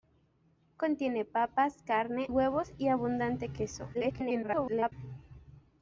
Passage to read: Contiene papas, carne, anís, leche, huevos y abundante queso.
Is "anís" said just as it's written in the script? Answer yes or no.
no